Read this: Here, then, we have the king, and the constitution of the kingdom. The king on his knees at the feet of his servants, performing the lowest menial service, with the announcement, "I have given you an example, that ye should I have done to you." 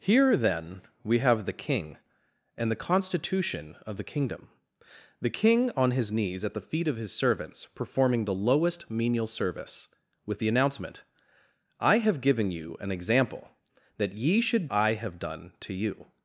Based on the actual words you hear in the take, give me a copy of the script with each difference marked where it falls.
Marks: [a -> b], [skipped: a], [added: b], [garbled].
Here, then, we have the king, and the constitution of the kingdom. The king on his knees at the feet of his servants, performing the lowest menial service, with the announcement, "I have given you an example, that ye should I have done to you."